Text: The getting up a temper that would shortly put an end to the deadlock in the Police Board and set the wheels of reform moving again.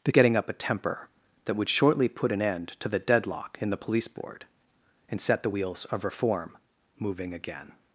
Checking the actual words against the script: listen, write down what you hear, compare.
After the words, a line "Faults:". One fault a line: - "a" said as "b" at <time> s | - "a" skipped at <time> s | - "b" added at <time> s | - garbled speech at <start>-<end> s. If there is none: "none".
The getting up a temper that would shortly put an end to the deadlock in the Police Board and set the wheels of reform moving again.
Faults:
none